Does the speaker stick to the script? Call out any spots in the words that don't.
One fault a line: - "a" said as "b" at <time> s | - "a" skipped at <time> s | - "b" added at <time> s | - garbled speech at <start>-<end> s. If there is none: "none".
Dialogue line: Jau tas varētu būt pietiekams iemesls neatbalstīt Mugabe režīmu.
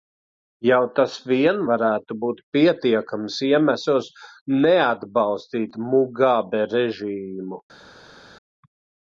- "vien" added at 1.3 s